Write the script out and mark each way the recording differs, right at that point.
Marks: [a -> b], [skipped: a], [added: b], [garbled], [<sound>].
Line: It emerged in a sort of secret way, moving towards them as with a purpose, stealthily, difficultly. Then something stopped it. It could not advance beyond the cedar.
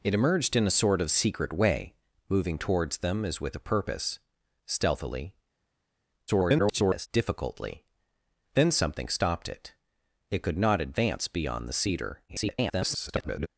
It emerged in a sort of secret way, moving towards them as with a purpose, stealthily, [garbled] difficultly. Then something stopped it. It could not advance beyond the cedar. [garbled]